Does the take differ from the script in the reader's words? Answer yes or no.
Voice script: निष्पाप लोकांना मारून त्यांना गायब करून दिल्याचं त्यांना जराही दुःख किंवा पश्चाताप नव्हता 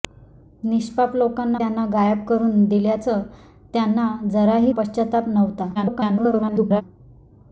yes